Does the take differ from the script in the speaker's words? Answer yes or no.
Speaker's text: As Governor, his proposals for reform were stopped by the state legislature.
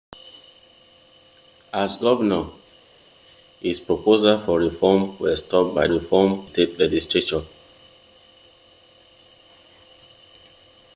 yes